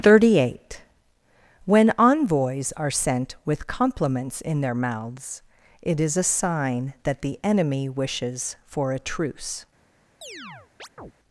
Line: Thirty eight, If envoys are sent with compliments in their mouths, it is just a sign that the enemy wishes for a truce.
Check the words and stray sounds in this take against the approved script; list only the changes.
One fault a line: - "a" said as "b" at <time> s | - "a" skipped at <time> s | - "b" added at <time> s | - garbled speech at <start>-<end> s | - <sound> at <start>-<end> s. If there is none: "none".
- "If" said as "When" at 1.7 s
- "just" skipped at 6.2 s
- chirp at 10.2-11.1 s